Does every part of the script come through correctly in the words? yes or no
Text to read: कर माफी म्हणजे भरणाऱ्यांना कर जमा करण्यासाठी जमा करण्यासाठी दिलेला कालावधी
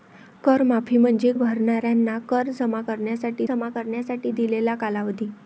yes